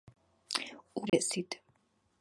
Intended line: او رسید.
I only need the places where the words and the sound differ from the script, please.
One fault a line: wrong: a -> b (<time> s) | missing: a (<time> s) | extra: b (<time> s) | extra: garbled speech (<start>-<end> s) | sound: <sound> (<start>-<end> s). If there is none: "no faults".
sound: dropout (1.1-1.1 s)